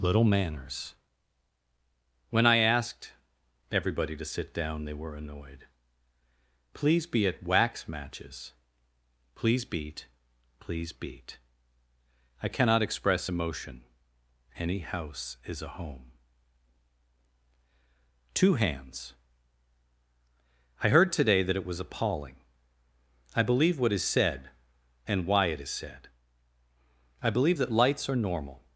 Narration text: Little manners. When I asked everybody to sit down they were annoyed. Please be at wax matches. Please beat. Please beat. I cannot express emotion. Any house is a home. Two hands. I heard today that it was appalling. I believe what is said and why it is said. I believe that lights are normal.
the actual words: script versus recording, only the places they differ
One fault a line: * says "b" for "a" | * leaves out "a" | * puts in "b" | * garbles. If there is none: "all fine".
all fine